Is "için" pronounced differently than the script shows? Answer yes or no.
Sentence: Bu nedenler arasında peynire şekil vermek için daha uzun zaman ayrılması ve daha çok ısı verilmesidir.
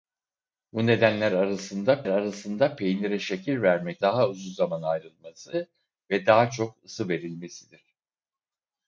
yes